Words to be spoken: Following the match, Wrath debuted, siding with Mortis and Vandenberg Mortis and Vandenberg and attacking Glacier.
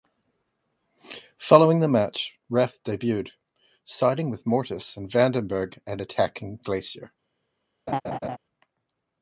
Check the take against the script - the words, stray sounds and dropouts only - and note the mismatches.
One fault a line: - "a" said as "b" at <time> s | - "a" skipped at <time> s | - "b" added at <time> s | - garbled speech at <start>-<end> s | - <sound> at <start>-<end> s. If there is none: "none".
- "Mortis and Vandenberg" skipped at 5.8 s
- laugh at 7.9-8.4 s